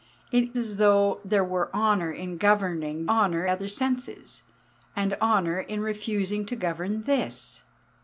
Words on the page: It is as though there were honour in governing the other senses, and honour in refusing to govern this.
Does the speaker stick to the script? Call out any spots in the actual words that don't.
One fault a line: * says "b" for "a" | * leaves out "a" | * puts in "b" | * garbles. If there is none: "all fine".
* leaves out "is"
* says "honour" for "the"